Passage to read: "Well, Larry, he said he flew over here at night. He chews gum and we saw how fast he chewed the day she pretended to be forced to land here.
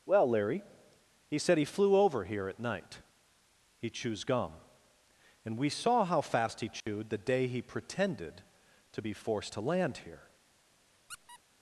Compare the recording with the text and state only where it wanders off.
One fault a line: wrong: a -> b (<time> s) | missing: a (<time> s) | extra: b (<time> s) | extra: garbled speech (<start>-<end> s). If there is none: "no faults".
wrong: she -> he (7.5 s)